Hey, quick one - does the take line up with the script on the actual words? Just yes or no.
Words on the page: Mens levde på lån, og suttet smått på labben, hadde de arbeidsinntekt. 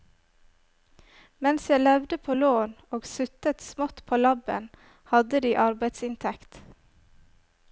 no